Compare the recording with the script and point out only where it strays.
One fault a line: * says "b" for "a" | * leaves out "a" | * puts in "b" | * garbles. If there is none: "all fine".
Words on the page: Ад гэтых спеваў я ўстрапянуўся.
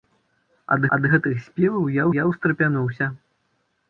* puts in "ад"
* puts in "я"